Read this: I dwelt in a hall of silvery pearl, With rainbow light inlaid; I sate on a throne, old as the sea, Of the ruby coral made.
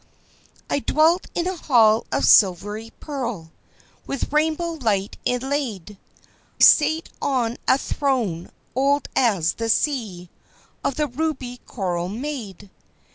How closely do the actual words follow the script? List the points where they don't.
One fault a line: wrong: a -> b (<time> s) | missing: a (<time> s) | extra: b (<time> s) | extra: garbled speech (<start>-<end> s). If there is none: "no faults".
missing: I (6.0 s)